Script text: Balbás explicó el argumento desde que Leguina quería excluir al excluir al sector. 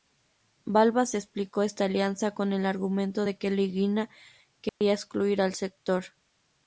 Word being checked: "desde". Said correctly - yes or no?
no